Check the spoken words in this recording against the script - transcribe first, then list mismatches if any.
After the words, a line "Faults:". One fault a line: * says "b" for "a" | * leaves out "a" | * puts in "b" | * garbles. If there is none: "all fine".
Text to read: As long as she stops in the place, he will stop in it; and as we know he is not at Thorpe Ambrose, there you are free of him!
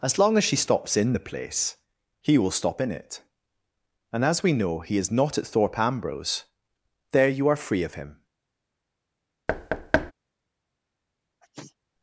As long as she stops in the place, he will stop in it; and as we know he is not at Thorpe Ambrose, there you are free of him!
Faults:
all fine